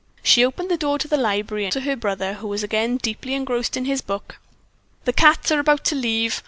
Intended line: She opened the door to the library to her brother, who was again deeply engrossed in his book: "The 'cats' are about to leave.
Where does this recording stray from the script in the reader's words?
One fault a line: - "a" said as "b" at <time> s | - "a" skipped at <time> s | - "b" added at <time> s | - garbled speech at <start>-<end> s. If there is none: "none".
none